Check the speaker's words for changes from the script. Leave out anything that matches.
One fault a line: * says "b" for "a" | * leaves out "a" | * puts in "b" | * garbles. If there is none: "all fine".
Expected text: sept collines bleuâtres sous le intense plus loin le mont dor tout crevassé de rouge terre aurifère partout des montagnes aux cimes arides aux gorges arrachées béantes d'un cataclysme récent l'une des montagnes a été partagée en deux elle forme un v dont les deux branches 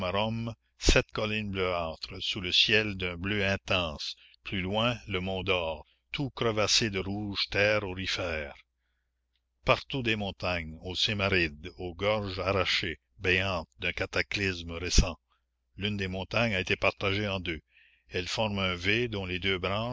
* puts in "ciel d'un bleu"